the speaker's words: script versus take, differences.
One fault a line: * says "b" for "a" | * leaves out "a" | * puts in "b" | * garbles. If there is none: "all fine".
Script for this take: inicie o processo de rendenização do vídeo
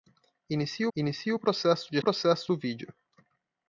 * puts in "inicie"
* says "processo" for "rendenização"